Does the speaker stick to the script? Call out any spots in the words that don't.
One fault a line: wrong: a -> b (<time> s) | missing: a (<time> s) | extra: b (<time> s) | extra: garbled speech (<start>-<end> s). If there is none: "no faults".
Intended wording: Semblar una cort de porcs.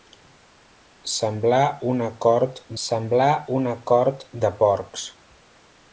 extra: semblar una cort (2.8 s)